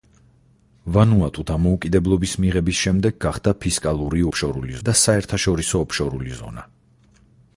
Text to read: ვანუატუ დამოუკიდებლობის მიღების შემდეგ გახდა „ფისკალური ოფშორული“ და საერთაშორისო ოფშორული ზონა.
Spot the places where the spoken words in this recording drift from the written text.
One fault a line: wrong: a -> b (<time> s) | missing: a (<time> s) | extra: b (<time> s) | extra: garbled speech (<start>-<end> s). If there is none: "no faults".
no faults